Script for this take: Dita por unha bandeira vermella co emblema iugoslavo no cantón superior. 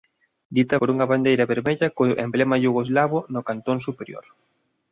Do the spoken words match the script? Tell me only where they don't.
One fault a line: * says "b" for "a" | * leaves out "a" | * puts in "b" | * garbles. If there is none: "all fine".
all fine